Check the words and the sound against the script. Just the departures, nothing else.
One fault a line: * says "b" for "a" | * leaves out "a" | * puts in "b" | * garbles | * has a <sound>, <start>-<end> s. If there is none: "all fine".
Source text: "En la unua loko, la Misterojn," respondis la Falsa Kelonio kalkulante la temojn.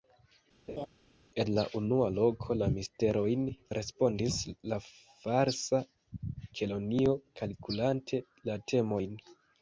* has a laugh, 0.7-0.9 s